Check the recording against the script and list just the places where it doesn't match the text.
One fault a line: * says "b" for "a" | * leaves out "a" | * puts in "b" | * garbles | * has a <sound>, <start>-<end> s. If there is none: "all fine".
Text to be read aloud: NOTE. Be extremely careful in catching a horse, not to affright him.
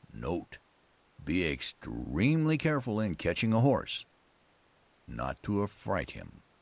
all fine